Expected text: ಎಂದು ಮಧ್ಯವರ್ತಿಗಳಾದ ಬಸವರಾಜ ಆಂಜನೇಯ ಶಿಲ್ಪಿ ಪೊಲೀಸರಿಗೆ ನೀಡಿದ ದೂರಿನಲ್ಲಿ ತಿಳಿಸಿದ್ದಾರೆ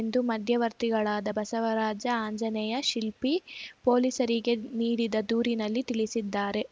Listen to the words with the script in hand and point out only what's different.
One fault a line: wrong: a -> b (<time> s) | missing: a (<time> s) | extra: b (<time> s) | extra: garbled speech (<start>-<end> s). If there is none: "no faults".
no faults